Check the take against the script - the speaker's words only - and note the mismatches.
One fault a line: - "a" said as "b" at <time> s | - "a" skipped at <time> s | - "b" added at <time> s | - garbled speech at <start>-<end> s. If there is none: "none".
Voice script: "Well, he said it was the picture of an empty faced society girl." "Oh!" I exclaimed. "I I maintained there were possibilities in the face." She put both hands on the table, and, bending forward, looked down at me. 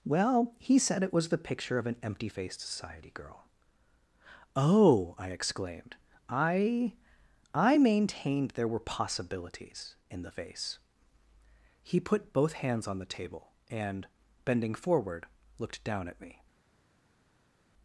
- "She" said as "He" at 11.8 s